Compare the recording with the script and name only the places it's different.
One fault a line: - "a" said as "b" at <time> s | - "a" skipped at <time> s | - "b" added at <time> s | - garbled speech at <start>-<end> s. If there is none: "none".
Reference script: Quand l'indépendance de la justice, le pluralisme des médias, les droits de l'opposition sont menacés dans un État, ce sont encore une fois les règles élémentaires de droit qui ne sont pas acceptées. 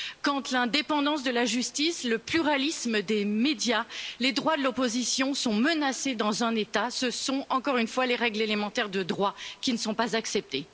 none